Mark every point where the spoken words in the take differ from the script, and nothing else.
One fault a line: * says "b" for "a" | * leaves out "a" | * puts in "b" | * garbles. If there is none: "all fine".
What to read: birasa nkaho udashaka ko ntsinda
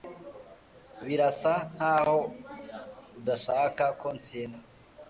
all fine